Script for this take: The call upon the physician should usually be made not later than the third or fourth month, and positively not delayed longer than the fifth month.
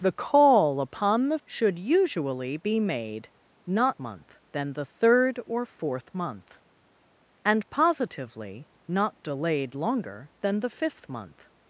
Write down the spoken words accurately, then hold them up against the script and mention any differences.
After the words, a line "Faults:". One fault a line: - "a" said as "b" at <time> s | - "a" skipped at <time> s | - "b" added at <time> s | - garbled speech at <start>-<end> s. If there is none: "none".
The call upon the should usually be made not month than the third or fourth month, and positively not delayed longer than the fifth month.
Faults:
- "physician" skipped at 1.4 s
- "later" said as "month" at 4.0 s